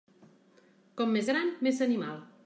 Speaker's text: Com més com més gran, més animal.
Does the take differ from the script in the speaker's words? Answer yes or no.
yes